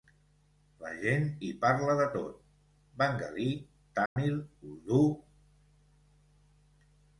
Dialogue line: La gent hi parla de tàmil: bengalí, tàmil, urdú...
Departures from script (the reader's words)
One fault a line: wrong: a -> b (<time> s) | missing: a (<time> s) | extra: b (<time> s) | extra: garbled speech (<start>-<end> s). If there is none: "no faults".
wrong: tàmil -> tot (2.1 s)